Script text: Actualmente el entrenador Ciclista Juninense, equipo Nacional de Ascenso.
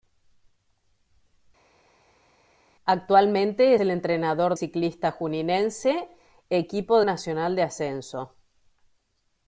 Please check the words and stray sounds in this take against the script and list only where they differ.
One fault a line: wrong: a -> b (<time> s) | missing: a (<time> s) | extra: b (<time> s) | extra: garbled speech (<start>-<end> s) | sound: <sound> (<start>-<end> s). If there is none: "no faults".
no faults